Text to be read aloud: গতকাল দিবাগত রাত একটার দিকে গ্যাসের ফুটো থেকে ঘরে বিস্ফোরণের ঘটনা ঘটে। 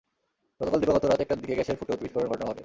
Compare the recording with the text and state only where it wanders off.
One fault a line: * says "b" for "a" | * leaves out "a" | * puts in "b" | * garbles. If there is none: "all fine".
* leaves out "থেকে ঘরে"